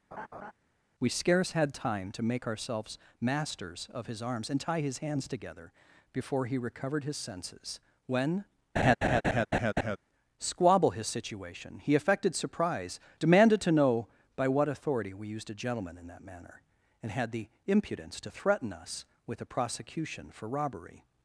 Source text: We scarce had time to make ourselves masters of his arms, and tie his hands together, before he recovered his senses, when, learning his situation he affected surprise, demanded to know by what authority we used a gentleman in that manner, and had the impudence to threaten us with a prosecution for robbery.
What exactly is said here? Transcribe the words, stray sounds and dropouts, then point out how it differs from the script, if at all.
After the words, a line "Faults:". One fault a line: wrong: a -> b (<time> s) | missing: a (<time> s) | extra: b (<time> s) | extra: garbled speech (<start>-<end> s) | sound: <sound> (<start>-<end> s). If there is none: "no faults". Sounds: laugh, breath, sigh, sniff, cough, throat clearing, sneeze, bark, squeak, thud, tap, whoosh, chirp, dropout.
We scarce had time to make ourselves masters of his arms, and tie his hands together, before he recovered his senses, when, squabble his situation he affected surprise, demanded to know by what authority we used a gentleman in that manner, and had the impudence to threaten us with a prosecution for robbery.
Faults:
sound: laugh (0.1-0.5 s)
sound: laugh (8.8-10.0 s)
wrong: learning -> squabble (10.4 s)